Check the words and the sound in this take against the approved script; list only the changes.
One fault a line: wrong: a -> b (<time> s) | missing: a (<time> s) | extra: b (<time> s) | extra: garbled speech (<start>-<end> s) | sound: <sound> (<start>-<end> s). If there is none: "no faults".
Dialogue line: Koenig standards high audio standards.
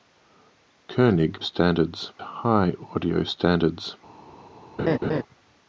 sound: laugh (4.8-5.2 s)